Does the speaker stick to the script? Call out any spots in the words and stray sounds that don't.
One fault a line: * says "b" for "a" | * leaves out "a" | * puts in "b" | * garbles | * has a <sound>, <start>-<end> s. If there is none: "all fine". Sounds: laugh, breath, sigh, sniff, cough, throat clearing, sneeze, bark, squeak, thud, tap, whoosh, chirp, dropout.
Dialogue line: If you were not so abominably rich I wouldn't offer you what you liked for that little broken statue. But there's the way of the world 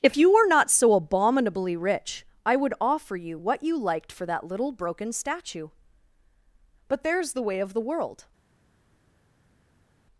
* says "would" for "wouldn't"